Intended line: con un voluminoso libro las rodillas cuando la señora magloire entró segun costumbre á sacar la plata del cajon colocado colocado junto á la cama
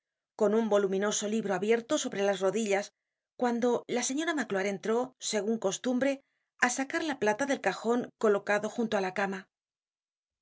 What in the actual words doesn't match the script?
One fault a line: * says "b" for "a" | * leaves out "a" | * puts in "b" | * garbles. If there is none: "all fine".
* puts in "abierto sobre"
* leaves out "colocado"